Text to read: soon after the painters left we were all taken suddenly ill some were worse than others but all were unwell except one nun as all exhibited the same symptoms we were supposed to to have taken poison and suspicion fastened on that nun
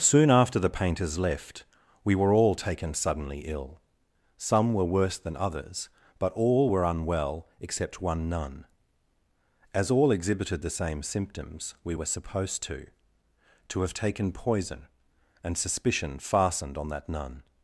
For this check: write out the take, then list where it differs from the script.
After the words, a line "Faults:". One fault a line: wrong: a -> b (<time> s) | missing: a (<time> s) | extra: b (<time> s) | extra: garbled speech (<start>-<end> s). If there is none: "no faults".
soon after the painters left we were all taken suddenly ill some were worse than others but all were unwell except one nun as all exhibited the same symptoms we were supposed to to have taken poison and suspicion fastened on that nun
Faults:
no faults